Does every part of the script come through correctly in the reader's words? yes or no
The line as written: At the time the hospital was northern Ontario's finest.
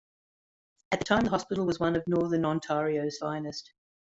no